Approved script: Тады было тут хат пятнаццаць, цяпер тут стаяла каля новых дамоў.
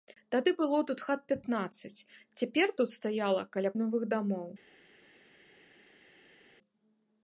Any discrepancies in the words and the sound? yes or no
no